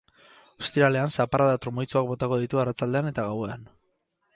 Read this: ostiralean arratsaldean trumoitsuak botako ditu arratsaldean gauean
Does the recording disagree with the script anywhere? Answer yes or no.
yes